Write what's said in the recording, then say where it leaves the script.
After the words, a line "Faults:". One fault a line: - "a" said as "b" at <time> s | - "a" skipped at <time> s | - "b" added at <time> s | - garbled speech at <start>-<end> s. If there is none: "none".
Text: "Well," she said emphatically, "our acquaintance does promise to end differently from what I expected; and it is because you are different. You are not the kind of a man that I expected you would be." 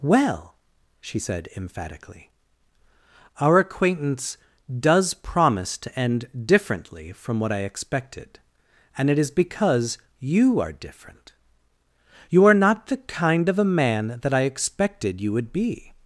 "Well," she said emphatically, "our acquaintance does promise to end differently from what I expected; and it is because you are different. You are not the kind of a man that I expected you would be."
Faults:
none